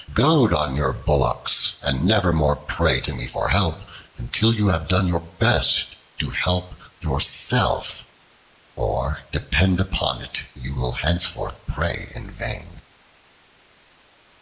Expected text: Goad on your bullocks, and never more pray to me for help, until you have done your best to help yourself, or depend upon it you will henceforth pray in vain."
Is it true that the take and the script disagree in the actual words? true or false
false